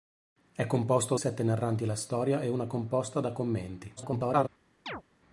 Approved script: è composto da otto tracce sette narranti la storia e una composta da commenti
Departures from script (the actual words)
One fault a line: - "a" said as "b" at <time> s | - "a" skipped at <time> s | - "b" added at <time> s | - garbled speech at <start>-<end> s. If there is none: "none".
- "da otto tracce" skipped at 1.2 s
- garbled speech at 4.0-4.5 s